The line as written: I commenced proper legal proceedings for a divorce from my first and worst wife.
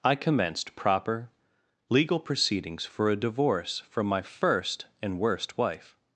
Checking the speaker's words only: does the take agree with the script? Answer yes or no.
yes